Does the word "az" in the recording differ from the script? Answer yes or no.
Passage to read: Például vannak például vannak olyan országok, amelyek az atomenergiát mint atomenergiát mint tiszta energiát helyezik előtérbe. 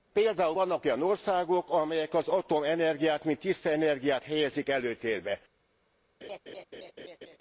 no